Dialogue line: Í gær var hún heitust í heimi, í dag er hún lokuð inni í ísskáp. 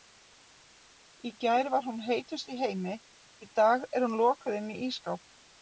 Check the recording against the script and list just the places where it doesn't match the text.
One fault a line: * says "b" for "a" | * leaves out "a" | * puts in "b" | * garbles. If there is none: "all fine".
all fine